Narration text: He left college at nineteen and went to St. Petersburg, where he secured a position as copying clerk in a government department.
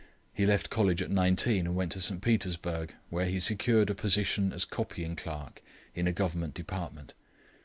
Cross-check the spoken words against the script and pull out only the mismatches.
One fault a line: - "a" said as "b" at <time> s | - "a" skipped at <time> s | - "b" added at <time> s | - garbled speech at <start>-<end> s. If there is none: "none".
none